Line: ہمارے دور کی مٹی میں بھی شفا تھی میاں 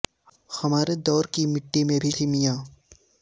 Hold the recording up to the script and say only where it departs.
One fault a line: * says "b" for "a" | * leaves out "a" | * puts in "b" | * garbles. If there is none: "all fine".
* leaves out "شفا"